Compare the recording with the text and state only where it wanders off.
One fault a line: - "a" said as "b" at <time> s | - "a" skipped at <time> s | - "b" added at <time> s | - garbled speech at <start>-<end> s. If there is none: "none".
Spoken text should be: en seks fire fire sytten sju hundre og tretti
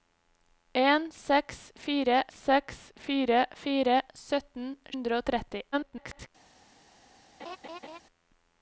- "seks" added at 2.4 s
- "fire" added at 3.6 s
- "sju" skipped at 4.7 s
- garbled speech at 5.7-6.3 s